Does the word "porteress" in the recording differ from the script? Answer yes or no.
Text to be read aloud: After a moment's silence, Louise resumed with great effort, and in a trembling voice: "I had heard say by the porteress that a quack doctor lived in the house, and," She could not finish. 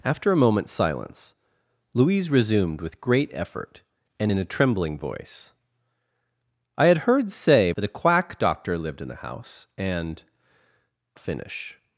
yes